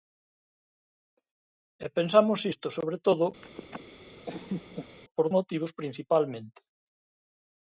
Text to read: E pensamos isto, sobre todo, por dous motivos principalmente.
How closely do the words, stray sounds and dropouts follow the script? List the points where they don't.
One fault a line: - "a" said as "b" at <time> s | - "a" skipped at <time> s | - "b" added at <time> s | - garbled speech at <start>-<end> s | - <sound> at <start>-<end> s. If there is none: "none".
- laugh at 3.4-5.0 s
- "dous" skipped at 5.3 s